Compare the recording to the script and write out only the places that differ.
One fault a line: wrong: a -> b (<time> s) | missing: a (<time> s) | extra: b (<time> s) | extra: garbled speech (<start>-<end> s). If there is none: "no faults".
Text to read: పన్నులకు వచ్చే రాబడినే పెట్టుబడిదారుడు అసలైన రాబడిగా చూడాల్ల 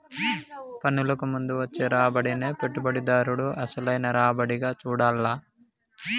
extra: ముందు (1.3 s)